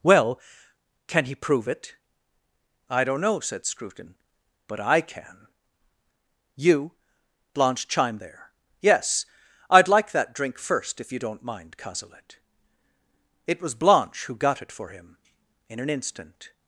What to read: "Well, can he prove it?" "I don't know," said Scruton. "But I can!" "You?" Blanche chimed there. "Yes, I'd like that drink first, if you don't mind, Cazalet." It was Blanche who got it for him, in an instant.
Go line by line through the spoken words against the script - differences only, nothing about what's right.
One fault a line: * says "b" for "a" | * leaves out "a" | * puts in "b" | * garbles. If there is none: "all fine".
all fine